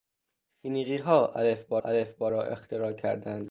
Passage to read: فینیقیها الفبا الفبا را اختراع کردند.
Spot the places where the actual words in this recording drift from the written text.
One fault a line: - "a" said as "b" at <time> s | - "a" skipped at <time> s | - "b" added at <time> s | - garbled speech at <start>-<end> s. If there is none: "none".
none